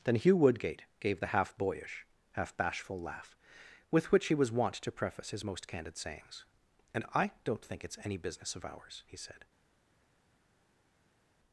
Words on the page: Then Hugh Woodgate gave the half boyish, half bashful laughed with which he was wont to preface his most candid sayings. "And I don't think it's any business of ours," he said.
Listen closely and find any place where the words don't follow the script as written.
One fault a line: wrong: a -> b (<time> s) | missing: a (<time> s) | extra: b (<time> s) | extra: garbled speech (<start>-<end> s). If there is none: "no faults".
wrong: laughed -> laugh (3.0 s)